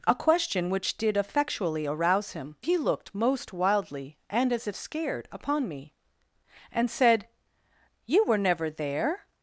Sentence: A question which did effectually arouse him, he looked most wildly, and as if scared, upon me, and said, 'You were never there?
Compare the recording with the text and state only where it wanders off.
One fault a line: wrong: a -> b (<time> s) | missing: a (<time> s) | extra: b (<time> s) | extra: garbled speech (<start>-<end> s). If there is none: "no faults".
no faults